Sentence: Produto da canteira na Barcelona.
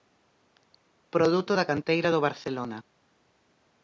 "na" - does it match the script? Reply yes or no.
no